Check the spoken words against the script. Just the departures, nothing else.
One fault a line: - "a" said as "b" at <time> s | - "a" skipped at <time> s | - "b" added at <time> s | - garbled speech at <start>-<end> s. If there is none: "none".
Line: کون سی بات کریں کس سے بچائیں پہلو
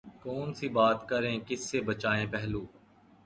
none